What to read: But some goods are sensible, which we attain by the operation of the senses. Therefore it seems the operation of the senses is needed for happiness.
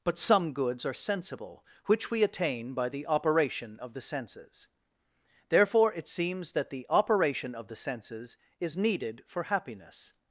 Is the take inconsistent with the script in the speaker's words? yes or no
yes